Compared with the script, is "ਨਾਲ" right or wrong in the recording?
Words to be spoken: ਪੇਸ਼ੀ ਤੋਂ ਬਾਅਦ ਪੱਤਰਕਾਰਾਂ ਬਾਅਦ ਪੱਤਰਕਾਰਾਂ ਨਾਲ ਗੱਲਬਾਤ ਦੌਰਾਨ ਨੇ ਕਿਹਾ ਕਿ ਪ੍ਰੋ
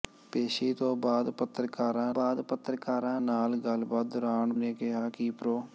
right